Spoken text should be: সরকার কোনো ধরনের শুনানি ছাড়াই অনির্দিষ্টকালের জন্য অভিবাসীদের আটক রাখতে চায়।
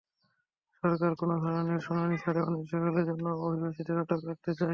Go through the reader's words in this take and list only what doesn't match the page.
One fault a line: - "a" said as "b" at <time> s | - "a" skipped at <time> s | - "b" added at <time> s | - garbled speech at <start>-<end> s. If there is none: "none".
none